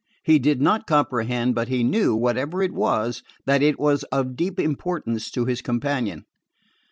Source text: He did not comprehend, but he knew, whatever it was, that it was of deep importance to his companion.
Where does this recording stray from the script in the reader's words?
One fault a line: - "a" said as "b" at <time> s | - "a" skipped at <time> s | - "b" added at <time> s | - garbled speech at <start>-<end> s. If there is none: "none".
none